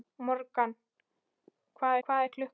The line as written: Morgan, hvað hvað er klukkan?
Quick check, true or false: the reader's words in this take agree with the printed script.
true